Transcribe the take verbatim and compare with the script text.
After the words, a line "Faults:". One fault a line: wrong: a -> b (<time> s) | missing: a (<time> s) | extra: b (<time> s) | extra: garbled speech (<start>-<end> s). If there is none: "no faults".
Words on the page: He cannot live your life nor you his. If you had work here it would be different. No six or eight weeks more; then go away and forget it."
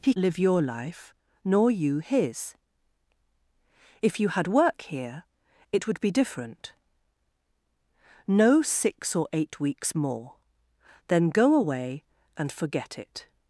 He live your life nor you his. If you had work here it would be different. No six or eight weeks more; then go away and forget it."
Faults:
missing: cannot (0.1 s)